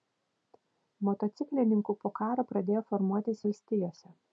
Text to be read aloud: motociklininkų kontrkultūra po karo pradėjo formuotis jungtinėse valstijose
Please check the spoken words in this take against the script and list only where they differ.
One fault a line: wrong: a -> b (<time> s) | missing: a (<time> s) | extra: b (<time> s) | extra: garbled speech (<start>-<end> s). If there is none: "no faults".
missing: kontrkultūra (2.0 s)
missing: jungtinėse (3.4 s)